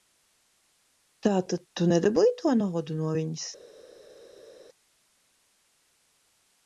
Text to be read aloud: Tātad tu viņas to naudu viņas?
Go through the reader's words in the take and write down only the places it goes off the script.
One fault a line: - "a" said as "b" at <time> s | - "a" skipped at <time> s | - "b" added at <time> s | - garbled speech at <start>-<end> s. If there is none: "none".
- "viņas" said as "nedabūji" at 1.9 s
- "no" added at 3.0 s